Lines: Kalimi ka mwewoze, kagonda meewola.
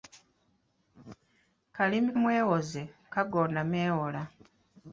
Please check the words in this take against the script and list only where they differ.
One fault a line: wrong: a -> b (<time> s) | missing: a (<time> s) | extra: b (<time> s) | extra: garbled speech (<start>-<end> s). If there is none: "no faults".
missing: ka (2.1 s)